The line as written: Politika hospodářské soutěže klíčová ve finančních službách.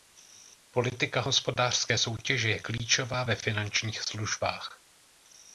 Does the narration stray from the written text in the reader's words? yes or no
yes